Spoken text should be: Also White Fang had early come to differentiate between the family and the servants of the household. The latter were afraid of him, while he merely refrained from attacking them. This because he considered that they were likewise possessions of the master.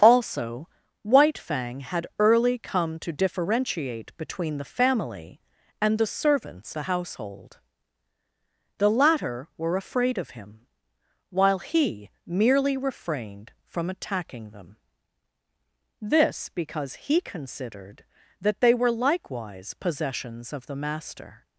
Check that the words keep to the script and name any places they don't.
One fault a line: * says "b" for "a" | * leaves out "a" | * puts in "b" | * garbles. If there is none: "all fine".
* leaves out "of"